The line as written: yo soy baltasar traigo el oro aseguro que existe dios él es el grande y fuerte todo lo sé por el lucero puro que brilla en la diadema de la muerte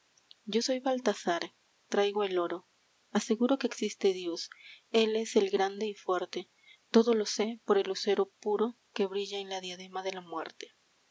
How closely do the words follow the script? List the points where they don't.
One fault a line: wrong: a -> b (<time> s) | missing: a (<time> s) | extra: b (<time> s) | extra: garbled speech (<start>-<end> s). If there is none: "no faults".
no faults